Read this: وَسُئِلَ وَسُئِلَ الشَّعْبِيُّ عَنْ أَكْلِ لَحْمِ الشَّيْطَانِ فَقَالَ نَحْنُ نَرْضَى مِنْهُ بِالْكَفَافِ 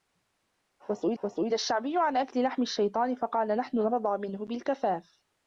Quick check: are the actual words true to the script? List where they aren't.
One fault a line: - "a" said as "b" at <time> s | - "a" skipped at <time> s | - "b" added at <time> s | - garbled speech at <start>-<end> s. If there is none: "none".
none